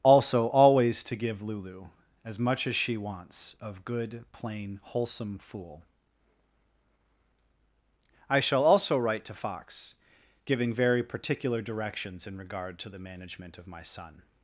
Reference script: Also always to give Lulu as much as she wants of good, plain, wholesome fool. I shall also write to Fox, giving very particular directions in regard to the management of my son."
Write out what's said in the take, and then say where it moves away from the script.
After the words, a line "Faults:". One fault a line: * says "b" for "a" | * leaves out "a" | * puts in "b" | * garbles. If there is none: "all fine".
Also always to give Lulu as much as she wants of good, plain, wholesome fool. I shall also write to Fox, giving very particular directions in regard to the management of my son."
Faults:
all fine